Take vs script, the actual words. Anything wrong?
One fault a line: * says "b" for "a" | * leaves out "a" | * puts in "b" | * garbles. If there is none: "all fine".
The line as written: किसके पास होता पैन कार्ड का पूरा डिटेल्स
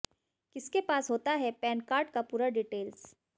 * puts in "है"